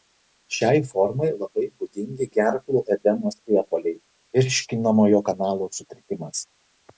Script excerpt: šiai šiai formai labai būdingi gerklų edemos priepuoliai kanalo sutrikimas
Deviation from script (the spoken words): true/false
true